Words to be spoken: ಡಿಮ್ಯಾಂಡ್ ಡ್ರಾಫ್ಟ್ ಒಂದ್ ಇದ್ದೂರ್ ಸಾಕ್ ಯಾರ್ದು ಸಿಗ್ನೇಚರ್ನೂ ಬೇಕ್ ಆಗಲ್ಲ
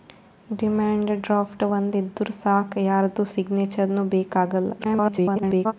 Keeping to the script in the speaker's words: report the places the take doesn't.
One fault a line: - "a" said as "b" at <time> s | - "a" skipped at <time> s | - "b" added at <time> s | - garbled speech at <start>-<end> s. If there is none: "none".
- garbled speech at 4.8-5.7 s